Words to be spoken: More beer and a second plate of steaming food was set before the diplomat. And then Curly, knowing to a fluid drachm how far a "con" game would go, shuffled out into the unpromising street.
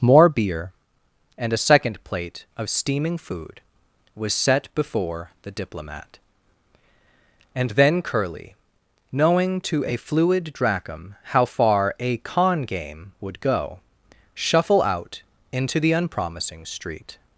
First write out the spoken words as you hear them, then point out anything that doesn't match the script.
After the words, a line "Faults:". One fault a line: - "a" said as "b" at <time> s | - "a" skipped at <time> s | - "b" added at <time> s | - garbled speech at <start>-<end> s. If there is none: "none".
More beer and a second plate of steaming food was set before the diplomat. And then Curly, knowing to a fluid drachm how far a "con" game would go, shuffle out into the unpromising street.
Faults:
- "shuffled" said as "shuffle" at 14.3 s